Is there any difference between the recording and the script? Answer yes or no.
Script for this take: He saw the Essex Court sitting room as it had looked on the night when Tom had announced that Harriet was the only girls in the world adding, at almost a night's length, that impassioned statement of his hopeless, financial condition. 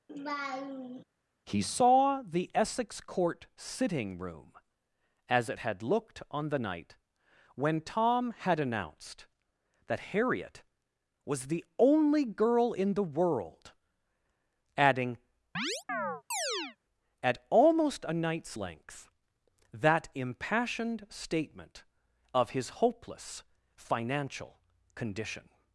yes